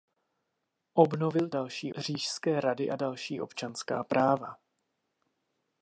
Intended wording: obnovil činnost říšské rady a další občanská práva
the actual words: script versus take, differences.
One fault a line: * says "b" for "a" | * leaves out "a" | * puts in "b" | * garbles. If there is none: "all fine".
* says "další" for "činnost"